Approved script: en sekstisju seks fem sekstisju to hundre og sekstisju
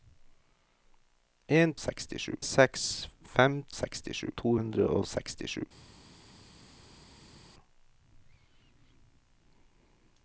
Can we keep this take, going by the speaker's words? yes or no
yes